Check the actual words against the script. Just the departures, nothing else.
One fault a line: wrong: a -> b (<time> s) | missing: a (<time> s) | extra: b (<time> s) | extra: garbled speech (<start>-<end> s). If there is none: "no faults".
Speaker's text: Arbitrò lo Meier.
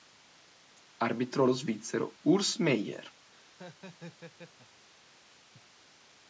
extra: svizzero Urs (1.5 s)